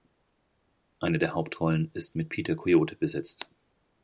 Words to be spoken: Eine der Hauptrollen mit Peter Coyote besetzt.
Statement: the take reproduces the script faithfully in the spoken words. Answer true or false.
false